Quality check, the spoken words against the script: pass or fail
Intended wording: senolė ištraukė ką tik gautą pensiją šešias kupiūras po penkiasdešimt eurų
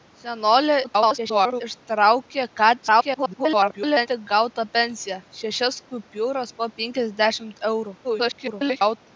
fail